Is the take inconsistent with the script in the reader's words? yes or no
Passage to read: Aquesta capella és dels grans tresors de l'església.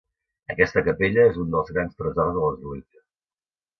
yes